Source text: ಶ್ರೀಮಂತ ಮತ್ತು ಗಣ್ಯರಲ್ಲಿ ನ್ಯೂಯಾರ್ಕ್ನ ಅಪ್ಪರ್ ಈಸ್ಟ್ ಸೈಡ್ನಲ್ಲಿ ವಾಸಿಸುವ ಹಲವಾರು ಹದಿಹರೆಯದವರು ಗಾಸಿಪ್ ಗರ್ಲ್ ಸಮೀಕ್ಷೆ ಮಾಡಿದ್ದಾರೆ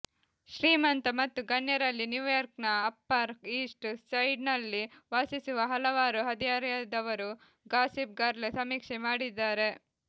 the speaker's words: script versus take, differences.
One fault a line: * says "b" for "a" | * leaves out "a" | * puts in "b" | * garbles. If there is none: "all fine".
all fine